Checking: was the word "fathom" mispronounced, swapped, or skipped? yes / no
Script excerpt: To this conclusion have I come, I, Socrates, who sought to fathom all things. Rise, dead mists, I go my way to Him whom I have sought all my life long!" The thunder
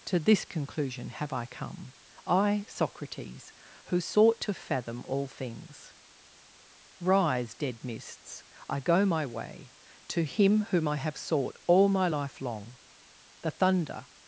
no